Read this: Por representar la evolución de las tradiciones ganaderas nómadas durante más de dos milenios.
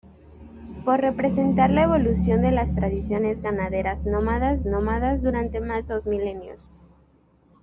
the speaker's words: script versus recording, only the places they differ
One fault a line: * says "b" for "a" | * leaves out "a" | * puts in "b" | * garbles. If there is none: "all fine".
* puts in "nómadas"
* leaves out "de"